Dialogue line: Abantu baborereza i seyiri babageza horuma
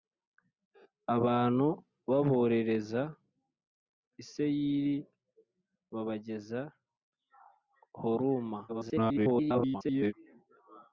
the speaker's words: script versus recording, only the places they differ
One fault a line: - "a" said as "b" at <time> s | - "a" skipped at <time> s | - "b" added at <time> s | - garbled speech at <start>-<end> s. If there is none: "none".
- garbled speech at 8.7-10.1 s